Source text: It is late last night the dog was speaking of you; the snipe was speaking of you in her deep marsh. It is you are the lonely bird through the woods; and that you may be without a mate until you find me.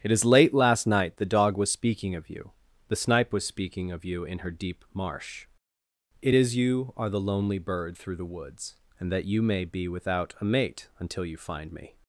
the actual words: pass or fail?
pass